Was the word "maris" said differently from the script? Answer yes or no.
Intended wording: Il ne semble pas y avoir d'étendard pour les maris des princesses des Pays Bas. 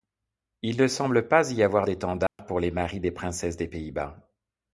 no